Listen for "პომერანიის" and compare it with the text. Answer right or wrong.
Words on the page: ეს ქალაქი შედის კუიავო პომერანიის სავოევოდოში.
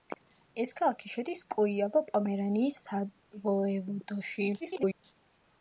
right